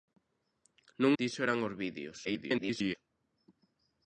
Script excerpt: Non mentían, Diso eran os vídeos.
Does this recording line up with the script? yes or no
no